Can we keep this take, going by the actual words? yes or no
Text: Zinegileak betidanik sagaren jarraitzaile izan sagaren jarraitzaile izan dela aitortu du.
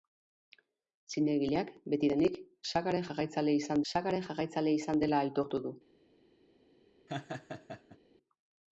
yes